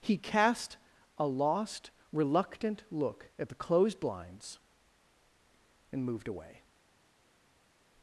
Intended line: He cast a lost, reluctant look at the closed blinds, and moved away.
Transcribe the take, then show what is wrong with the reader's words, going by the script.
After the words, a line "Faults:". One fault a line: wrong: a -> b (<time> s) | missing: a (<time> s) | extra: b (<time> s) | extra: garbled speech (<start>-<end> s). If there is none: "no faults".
He cast a lost, reluctant look at the closed blinds, and moved away.
Faults:
no faults